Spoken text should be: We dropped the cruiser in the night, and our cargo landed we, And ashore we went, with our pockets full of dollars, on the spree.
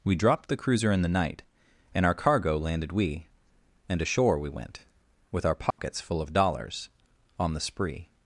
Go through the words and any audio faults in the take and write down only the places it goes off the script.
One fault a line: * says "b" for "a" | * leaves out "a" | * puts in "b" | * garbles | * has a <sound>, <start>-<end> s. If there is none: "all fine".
* has a dropout, 5.7-5.8 s